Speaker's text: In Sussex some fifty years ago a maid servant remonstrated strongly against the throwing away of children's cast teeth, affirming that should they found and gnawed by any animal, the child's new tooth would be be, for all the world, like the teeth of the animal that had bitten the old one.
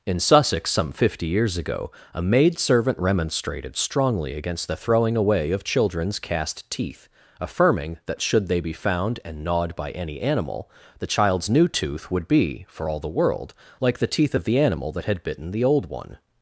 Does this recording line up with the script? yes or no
no